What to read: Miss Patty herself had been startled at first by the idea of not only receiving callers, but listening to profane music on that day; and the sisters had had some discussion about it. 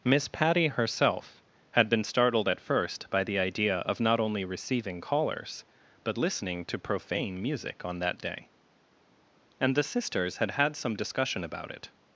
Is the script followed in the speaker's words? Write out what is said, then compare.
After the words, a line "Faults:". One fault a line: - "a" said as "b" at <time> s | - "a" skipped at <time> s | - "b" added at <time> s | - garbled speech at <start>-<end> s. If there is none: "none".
Miss Patty herself had been startled at first by the idea of not only receiving callers, but listening to profane music on that day; and the sisters had had some discussion about it.
Faults:
none